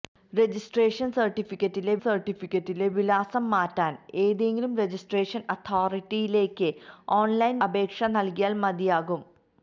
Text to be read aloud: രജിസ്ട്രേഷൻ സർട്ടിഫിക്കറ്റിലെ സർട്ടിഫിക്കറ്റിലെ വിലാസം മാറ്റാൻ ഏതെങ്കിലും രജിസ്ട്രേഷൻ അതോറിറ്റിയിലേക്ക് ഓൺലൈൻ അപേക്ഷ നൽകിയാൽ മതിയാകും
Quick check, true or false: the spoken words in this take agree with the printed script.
true